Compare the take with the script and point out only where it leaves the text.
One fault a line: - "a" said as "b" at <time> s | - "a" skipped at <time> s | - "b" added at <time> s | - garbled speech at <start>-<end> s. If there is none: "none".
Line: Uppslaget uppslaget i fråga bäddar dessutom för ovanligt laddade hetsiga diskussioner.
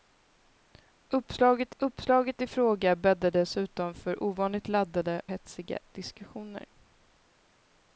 none